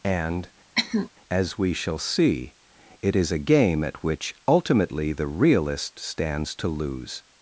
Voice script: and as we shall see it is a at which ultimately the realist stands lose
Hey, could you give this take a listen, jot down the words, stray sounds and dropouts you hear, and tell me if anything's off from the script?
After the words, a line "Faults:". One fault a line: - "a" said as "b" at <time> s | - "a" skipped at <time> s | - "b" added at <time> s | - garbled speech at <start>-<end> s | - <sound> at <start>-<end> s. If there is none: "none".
and as we shall see it is a game at which ultimately the realist stands to lose
Faults:
- cough at 0.8-1.1 s
- "game" added at 3.4 s
- "to" added at 6.6 s